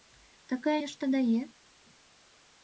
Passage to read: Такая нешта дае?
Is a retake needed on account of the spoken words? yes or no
no